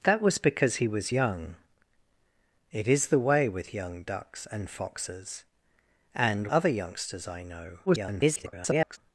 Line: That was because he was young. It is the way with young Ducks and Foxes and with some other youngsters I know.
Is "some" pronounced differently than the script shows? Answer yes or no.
yes